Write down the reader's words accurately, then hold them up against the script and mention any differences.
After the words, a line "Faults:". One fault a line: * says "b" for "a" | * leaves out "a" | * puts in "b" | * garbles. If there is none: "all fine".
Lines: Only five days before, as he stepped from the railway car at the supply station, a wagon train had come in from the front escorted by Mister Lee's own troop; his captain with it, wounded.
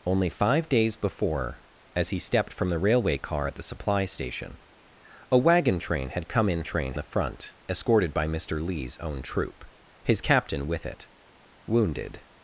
Only five days before, as he stepped from the railway car at the supply station, a wagon train had come in train the front escorted by Mister Lee's own troop; his captain with it, wounded.
Faults:
* says "train" for "from"